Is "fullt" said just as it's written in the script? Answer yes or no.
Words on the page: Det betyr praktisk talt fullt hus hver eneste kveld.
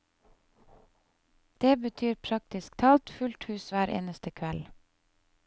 yes